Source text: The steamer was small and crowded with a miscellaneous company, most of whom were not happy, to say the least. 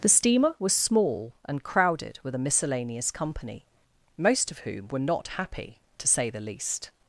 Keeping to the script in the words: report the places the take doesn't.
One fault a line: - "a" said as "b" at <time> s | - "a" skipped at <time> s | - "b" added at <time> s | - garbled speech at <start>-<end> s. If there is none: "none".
none